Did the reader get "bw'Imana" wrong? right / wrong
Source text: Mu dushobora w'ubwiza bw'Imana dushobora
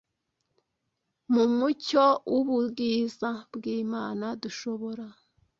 right